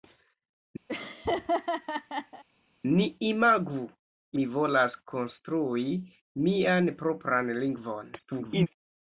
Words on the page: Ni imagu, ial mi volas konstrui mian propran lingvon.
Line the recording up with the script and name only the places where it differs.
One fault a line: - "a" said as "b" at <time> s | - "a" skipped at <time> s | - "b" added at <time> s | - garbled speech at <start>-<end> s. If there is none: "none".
- "ial" skipped at 3.8 s
- garbled speech at 8.2-8.7 s